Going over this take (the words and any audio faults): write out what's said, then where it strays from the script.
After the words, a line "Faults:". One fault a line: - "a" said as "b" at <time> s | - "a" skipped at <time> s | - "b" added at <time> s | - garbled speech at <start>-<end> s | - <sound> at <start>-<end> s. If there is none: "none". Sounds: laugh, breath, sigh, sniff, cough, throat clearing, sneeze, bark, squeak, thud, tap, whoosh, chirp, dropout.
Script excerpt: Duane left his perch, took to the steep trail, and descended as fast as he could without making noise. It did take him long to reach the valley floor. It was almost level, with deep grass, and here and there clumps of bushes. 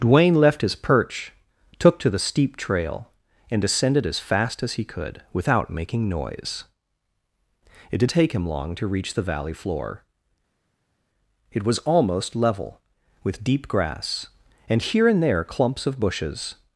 Duane left his perch, took to the steep trail, and descended as fast as he could without making noise. It did take him long to reach the valley floor. It was almost level, with deep grass, and here and there clumps of bushes.
Faults:
none